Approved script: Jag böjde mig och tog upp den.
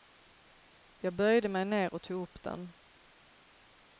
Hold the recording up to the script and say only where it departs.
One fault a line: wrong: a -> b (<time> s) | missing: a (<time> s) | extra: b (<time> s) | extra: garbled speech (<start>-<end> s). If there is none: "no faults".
extra: ner (1.6 s)